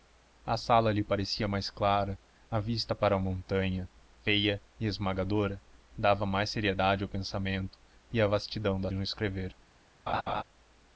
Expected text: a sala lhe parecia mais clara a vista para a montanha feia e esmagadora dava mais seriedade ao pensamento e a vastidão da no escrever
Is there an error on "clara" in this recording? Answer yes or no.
no